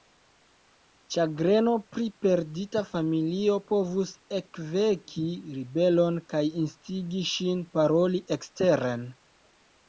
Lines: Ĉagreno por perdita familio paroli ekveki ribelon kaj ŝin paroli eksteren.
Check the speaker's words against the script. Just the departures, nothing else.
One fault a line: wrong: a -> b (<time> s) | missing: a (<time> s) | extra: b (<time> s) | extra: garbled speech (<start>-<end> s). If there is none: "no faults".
wrong: por -> pri (1.9 s)
wrong: paroli -> povus (3.7 s)
extra: instigi (6.7 s)